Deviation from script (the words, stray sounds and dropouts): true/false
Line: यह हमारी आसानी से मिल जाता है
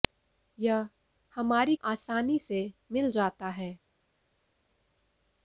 false